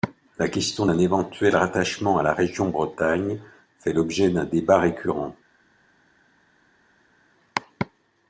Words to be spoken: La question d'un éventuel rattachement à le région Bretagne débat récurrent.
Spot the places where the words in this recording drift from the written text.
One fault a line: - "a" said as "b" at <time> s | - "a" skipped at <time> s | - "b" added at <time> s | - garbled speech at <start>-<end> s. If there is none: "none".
- "le" said as "la" at 2.2 s
- "fait l'objet d'un" added at 3.8 s